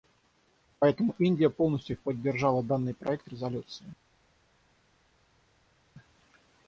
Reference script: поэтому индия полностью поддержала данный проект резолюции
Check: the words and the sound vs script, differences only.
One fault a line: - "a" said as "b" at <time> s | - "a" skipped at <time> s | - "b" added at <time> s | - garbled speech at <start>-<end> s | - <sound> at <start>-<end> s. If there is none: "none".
none